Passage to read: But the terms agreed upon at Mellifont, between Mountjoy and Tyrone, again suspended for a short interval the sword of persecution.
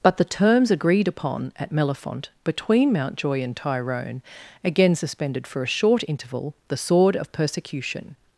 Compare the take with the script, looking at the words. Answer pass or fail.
pass